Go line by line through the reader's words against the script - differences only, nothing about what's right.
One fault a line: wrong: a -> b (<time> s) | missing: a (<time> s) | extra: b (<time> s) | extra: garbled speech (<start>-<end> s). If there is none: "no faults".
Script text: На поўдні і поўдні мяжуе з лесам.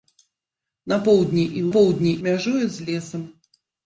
no faults